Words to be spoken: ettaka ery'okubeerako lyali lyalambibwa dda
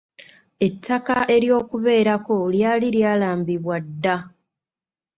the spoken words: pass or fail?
pass